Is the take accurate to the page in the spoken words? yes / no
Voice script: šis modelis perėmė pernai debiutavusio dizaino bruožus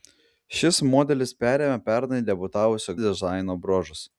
yes